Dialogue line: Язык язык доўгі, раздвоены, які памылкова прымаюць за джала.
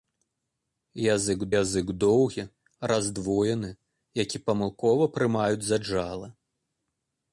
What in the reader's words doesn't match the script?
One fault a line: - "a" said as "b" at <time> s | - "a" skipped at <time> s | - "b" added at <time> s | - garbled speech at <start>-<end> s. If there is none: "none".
none